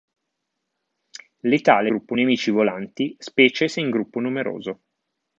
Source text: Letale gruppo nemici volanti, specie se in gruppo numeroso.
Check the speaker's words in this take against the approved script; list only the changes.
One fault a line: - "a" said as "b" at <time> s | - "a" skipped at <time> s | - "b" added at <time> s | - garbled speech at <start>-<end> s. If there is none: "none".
none